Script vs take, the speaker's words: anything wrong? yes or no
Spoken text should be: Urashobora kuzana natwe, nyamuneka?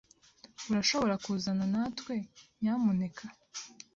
no